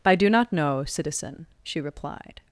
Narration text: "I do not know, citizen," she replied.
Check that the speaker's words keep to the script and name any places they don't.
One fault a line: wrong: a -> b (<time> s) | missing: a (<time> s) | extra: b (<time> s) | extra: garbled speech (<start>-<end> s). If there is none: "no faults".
no faults